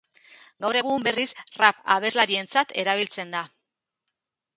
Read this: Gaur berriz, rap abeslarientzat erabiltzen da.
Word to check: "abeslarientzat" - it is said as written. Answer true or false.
true